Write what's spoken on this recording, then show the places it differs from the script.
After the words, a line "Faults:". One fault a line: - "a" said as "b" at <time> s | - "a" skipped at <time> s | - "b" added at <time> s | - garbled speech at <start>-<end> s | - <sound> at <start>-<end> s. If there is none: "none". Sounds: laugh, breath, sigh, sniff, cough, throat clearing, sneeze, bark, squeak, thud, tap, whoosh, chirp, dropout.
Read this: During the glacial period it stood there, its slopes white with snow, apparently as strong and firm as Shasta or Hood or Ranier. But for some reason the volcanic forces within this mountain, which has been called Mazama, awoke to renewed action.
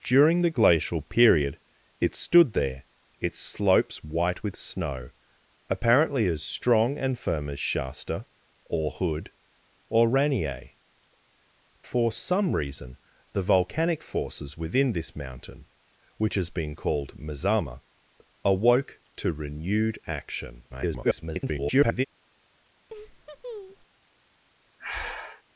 During the glacial period it stood there, its slopes white with snow, apparently as strong and firm as Shasta or Hood or Ranier. For some reason the volcanic forces within this mountain, which has been called Mazama, awoke to renewed action. [garbled]
Faults:
- "But" skipped at 10.7 s
- garbled speech at 20.7-22.1 s
- laugh at 22.9-23.9 s
- breath at 24.8-25.4 s